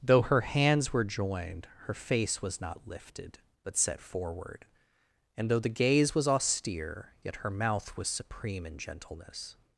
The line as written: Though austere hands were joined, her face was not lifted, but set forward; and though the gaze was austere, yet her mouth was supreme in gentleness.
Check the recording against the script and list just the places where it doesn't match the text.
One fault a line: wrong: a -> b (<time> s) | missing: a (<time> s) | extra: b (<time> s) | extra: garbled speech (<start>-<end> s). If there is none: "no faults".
wrong: austere -> her (0.2 s)